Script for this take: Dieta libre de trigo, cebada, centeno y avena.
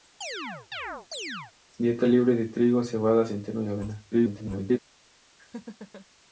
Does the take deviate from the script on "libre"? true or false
false